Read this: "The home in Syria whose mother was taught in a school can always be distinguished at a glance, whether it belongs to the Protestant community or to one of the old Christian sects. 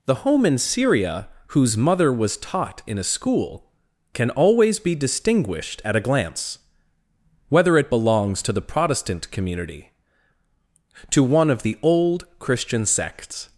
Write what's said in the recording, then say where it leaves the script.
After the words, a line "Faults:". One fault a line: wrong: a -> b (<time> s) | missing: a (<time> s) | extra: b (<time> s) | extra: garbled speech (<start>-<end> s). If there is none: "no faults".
"The home in Syria whose mother was taught in a school can always be distinguished at a glance, whether it belongs to the Protestant community to one of the old Christian sects.
Faults:
missing: or (9.9 s)